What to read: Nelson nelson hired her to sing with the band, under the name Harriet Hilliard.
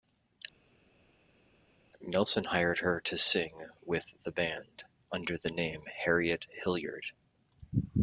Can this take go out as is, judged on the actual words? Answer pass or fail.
fail